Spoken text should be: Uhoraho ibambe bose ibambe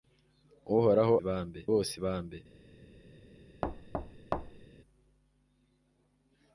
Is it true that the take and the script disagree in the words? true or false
false